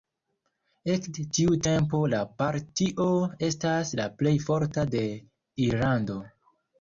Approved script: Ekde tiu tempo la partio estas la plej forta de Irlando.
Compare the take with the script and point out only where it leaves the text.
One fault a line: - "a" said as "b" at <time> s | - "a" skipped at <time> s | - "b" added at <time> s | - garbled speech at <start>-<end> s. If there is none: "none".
none